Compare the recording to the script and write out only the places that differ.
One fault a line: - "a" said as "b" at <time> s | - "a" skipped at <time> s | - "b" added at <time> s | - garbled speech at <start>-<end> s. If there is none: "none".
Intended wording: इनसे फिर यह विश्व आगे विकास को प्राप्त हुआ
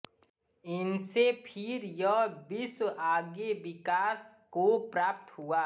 none